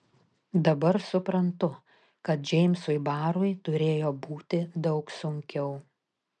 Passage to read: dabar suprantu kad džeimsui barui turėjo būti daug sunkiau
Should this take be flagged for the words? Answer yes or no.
no